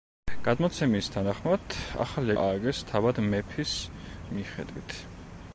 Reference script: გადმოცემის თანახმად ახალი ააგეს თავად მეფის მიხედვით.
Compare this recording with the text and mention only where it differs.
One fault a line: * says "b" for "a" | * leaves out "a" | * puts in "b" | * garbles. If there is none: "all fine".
all fine